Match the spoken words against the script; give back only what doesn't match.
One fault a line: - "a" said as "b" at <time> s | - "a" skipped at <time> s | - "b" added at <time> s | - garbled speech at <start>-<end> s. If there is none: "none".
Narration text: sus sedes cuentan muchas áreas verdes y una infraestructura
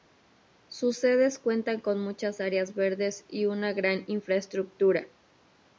- "con" added at 1.8 s
- "gran" added at 3.7 s